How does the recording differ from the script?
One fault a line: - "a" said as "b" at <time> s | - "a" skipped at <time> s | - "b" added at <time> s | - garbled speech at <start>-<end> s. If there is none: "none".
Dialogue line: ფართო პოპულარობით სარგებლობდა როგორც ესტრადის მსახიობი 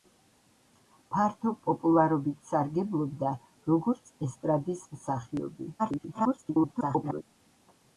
- garbled speech at 5.8-7.2 s